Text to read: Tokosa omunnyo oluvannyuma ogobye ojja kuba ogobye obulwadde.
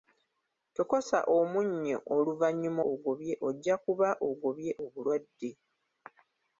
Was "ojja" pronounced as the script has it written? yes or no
yes